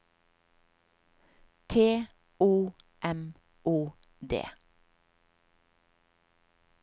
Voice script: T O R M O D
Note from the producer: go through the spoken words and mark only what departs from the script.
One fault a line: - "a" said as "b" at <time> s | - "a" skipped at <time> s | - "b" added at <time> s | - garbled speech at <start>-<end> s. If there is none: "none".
- "R" skipped at 2.7 s